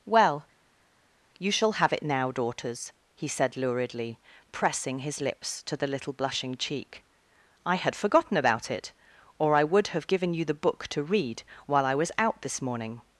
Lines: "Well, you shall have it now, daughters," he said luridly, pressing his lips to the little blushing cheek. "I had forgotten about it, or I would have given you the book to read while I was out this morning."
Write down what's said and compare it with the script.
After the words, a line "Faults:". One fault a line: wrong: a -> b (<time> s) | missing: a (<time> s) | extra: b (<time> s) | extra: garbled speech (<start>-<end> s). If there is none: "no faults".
"Well, you shall have it now, daughters," he said luridly, pressing his lips to the little blushing cheek. "I had forgotten about it, or I would have given you the book to read while I was out this morning."
Faults:
no faults